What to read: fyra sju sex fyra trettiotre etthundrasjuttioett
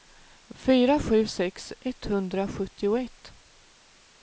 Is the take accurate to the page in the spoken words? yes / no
no